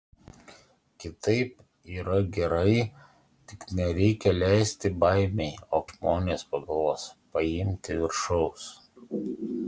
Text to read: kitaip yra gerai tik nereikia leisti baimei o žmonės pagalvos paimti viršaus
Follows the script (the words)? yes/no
yes